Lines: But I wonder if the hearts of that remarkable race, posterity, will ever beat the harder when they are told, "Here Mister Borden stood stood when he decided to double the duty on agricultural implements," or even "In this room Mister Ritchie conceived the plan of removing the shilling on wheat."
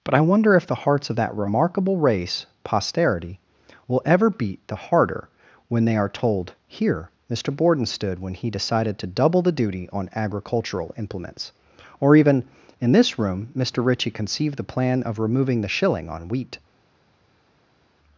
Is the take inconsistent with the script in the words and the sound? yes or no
yes